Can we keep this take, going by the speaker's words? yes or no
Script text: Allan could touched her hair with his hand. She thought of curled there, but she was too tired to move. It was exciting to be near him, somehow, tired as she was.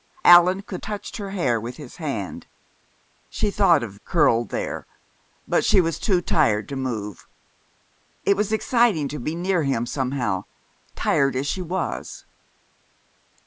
yes